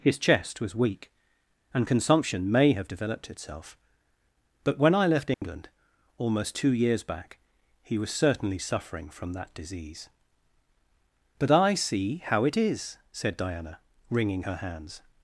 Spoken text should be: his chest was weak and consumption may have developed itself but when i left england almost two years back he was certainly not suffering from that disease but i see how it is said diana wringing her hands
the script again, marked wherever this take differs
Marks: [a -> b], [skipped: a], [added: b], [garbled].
his chest was weak and consumption may have developed itself but when i left england almost two years back he was certainly [skipped: not] suffering from that disease but i see how it is said diana wringing her hands